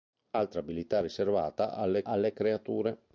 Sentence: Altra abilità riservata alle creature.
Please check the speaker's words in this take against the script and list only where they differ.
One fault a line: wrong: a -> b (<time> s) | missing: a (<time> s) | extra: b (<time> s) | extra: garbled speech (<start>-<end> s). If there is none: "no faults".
extra: alle (2.1 s)